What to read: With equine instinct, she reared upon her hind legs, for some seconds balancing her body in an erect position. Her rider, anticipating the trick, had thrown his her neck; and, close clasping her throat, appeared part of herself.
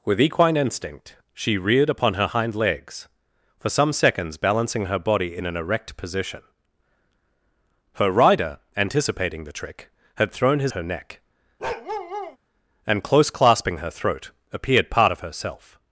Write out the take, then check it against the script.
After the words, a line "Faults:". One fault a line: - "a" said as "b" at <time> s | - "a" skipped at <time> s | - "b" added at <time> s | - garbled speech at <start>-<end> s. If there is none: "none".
With equine instinct, she reared upon her hind legs, for some seconds balancing her body in an erect position. Her rider, anticipating the trick, had thrown his her neck; and, close clasping her throat, appeared part of herself.
Faults:
none